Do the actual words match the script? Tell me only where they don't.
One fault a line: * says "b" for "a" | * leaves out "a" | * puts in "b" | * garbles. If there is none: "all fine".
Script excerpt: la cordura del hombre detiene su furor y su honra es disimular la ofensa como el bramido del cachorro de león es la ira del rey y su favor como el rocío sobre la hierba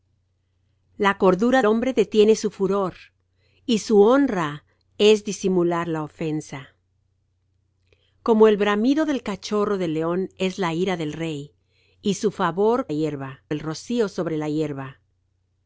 * leaves out "del"
* says "hierba" for "como"